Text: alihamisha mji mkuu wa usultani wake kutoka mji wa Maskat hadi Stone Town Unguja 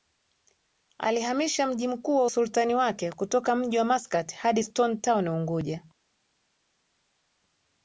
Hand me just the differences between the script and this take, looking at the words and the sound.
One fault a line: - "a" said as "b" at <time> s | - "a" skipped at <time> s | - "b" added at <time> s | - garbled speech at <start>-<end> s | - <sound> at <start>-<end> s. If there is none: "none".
none